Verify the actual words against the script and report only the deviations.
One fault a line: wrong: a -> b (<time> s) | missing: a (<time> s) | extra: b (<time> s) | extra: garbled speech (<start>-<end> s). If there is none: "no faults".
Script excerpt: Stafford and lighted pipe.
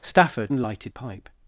no faults